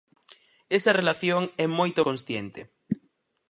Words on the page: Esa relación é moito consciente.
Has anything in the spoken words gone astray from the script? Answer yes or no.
no